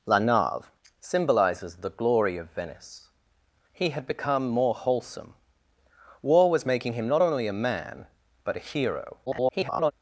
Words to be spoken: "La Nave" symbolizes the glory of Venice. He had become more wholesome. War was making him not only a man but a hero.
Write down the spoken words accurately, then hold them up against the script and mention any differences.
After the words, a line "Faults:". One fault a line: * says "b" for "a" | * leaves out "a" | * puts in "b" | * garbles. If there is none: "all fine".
"La Nave" symbolizes the glory of Venice. He had become more wholesome. War was making him not only a man but a hero. [garbled]
Faults:
* garbles